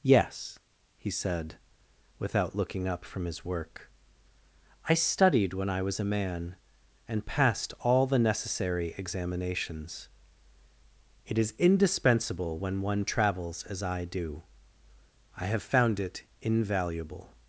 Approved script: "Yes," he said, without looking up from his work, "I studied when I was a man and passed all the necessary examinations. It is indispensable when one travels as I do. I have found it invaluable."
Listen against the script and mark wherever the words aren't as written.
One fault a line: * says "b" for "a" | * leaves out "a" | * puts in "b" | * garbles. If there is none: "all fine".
all fine